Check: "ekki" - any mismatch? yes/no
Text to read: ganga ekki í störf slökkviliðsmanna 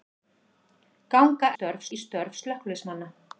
yes